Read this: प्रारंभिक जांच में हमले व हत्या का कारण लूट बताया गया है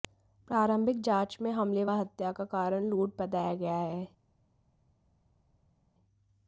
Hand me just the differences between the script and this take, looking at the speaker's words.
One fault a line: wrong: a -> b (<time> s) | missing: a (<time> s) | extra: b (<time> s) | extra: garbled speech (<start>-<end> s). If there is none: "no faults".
no faults